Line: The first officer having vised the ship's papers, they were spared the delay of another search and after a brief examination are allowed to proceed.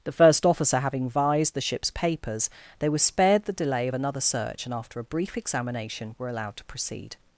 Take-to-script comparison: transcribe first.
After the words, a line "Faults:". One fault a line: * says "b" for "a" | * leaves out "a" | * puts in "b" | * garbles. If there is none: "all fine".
The first officer having vised the ship's papers, they were spared the delay of another search and after a brief examination were allowed to proceed.
Faults:
* says "were" for "are"